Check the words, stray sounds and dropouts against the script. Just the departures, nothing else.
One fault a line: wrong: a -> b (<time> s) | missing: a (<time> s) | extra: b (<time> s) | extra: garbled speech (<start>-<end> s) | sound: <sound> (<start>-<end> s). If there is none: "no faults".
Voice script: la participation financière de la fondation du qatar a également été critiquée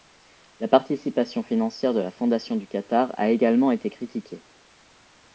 no faults